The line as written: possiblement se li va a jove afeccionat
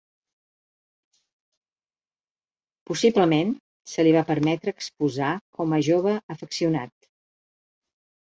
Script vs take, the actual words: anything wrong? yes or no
yes